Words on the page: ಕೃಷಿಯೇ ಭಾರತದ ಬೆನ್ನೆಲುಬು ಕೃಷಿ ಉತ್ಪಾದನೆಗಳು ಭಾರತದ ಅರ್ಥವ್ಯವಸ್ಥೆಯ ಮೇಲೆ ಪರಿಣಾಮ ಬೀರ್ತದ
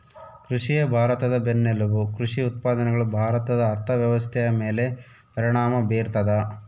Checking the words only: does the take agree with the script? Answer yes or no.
yes